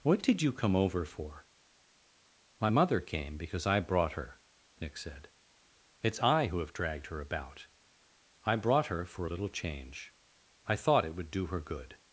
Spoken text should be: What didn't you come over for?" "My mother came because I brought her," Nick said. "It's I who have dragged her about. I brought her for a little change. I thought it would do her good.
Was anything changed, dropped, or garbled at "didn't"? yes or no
yes